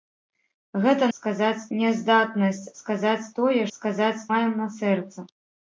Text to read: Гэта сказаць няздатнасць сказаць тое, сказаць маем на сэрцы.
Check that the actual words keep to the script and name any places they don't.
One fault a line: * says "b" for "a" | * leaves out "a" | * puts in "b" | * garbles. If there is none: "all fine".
all fine